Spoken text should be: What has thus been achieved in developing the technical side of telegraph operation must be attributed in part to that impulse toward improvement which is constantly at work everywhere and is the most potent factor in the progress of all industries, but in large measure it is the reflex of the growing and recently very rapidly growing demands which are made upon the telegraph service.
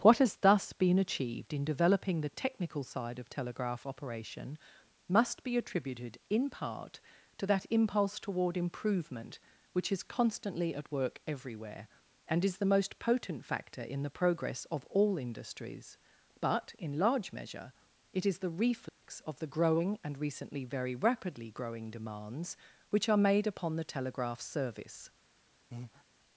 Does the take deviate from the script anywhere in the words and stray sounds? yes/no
yes